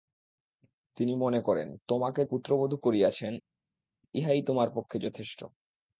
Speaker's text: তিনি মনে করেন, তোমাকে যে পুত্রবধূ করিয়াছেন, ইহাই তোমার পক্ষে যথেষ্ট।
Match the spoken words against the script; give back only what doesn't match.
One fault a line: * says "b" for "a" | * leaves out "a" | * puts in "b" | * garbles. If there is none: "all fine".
* leaves out "যে"